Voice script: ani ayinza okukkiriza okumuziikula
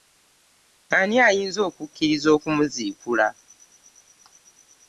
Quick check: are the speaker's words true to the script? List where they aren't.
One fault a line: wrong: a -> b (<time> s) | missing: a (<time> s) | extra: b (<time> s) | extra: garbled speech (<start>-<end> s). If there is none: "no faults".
no faults